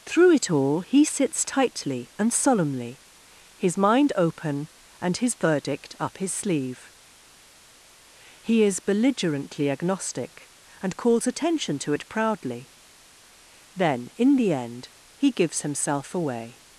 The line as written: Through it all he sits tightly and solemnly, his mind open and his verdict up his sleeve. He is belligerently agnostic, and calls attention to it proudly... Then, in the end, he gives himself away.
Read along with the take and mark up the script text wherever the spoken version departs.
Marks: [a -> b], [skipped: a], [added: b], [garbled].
Through it all he sits tightly and solemnly, his mind open and his verdict up his sleeve. He is belligerently agnostic, and calls attention to it proudly... Then, in the end, he gives himself away.